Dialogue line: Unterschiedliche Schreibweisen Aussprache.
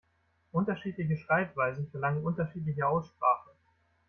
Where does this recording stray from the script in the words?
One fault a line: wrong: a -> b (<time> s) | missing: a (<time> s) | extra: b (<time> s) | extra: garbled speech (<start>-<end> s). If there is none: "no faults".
extra: verlangen unterschiedliche (1.9 s)